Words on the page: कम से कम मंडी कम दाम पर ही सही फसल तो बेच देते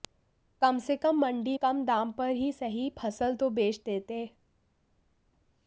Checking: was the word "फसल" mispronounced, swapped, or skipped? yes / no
no